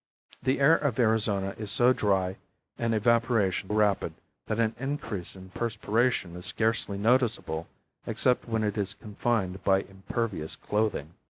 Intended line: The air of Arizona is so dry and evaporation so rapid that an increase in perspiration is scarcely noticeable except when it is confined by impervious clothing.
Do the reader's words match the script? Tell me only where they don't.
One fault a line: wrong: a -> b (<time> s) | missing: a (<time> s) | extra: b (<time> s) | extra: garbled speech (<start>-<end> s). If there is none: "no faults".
missing: so (3.7 s)